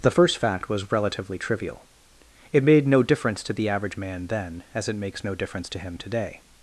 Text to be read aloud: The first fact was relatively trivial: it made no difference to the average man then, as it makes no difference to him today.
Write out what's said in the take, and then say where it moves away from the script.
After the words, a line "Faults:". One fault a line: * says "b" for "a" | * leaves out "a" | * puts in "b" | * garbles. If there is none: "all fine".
The first fact was relatively trivial: it made no difference to the average man then, as it makes no difference to him today.
Faults:
all fine